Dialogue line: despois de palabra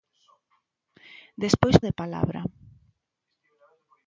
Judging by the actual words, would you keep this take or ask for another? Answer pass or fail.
pass